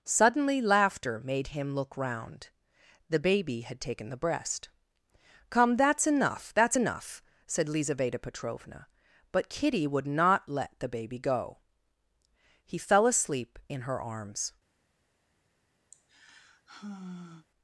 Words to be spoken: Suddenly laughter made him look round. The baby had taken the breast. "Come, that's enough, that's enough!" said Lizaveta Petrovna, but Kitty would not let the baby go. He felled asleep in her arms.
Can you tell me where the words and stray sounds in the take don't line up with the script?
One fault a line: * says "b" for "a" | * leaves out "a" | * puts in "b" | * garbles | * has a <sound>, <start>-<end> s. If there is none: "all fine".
* says "fell" for "felled"
* has a sigh, 15.9-17.5 s